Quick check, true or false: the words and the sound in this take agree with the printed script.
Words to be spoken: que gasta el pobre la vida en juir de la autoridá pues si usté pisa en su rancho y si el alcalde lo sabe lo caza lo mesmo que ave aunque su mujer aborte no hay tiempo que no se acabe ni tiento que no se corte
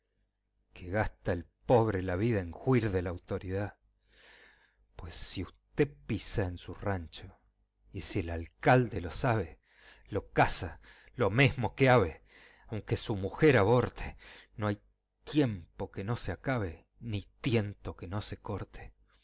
true